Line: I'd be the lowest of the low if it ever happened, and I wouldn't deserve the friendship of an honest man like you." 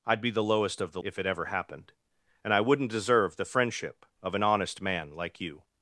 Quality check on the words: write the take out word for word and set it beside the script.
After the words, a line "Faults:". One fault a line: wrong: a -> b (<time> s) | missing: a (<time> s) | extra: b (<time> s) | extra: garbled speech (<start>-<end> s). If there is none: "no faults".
I'd be the lowest of the if it ever happened, and I wouldn't deserve the friendship of an honest man like you."
Faults:
missing: low (1.0 s)